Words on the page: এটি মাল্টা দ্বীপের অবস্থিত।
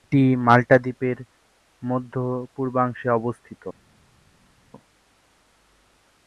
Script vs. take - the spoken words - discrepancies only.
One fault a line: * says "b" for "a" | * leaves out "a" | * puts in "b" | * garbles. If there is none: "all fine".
* puts in "মধ্য পূর্বাংশে"